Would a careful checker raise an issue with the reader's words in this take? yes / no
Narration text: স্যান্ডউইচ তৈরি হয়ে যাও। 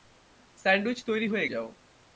no